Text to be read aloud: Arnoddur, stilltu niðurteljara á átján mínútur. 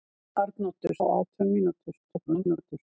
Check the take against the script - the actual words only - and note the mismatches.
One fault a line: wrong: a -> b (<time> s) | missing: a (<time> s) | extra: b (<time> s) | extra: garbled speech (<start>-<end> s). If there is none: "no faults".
missing: stilltu niðurteljara (0.9 s)
extra: garbled speech (2.1-2.8 s)